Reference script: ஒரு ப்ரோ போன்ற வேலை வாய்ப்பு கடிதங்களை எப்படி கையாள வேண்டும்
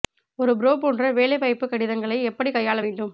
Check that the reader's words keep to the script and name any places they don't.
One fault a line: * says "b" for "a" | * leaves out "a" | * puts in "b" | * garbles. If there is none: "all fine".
all fine